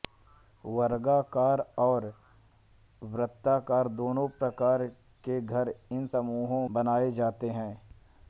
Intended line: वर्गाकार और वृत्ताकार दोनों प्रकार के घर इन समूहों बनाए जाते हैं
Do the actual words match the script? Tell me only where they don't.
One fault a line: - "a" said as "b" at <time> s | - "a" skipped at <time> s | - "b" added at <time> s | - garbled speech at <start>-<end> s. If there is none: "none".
none